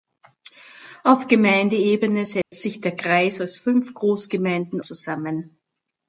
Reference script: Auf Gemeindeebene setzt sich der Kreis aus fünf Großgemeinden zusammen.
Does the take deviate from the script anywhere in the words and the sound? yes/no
yes